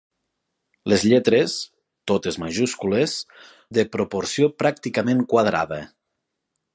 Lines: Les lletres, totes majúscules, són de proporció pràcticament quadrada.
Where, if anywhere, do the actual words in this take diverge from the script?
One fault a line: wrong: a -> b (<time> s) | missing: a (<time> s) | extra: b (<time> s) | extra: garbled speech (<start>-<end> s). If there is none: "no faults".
missing: són (3.1 s)